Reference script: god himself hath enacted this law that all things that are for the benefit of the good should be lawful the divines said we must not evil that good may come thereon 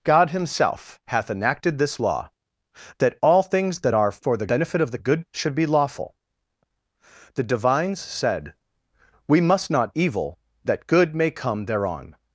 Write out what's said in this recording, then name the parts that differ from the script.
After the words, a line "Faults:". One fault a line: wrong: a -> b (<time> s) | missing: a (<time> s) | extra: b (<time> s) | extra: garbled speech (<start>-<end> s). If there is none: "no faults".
god himself hath enacted this law that all things that are for the benefit of the good should be lawful the divines said we must not evil that good may come thereon
Faults:
no faults